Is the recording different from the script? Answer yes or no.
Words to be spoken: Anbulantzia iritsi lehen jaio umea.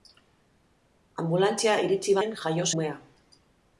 no